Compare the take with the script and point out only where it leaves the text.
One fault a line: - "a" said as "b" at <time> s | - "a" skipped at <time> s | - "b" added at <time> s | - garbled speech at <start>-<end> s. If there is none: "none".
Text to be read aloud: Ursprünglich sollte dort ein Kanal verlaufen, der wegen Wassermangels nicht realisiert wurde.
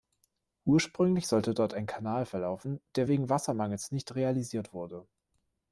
none